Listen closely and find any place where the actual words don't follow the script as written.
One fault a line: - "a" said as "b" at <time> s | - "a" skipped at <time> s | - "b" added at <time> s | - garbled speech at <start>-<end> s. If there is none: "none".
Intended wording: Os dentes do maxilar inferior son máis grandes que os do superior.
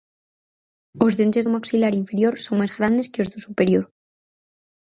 none